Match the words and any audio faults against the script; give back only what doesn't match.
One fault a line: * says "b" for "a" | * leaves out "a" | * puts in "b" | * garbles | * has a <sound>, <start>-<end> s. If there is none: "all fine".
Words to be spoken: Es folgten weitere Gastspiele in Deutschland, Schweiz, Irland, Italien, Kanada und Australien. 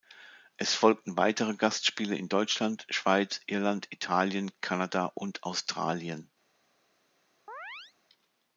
* has a chirp, 7.5-7.9 s